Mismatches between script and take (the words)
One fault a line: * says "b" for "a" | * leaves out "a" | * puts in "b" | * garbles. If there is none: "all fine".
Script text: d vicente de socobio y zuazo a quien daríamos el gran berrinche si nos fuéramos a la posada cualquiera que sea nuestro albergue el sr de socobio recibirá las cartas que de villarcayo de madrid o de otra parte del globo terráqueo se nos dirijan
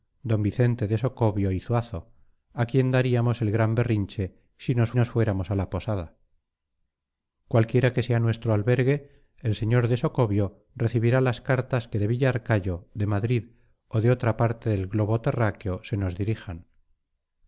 * puts in "nos"